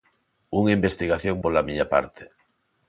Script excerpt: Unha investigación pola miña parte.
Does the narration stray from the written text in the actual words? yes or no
no